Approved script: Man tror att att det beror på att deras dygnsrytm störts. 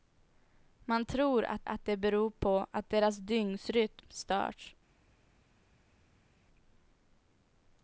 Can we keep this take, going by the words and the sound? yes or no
yes